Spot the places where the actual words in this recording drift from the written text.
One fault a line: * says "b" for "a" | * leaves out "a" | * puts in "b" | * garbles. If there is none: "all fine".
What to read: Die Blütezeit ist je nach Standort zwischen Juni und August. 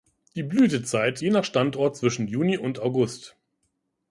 * leaves out "ist"